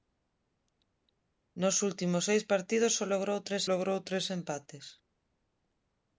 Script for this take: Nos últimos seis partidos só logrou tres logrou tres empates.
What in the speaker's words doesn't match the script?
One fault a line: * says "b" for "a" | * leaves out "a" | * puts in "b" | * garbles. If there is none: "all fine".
all fine